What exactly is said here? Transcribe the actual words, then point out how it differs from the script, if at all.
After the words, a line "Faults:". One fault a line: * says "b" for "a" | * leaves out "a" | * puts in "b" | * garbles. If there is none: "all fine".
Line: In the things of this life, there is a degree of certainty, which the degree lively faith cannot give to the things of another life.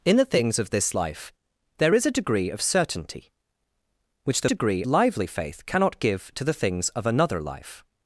In the things of this life, there is a degree of certainty, which the degree lively faith cannot give to the things of another life.
Faults:
all fine